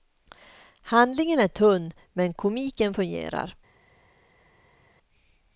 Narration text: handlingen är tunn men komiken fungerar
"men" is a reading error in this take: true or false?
false